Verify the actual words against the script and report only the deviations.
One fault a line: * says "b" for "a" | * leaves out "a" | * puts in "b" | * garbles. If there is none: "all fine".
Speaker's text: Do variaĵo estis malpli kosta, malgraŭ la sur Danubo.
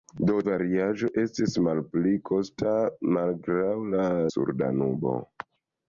all fine